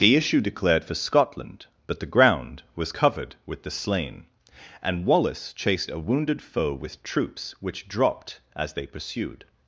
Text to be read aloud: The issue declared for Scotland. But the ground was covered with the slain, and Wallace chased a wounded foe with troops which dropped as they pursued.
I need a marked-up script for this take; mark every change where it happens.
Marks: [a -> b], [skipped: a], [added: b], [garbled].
The issue declared for Scotland. But the ground was covered with the slain, and Wallace chased a wounded foe with troops which dropped as they pursued.